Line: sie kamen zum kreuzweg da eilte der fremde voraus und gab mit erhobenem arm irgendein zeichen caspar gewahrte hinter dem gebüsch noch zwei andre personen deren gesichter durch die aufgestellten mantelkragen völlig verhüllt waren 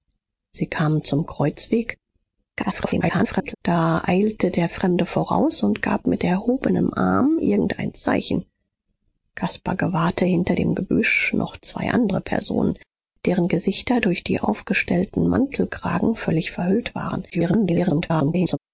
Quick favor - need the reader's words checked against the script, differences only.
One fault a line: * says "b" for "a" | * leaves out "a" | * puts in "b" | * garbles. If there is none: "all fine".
* garbles
* garbles